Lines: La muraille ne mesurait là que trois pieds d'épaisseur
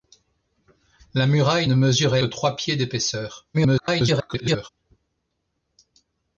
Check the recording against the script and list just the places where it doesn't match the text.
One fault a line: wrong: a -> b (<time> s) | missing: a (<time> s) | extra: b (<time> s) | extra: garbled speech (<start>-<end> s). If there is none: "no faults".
missing: là que (2.2 s)
extra: garbled speech (3.5-4.7 s)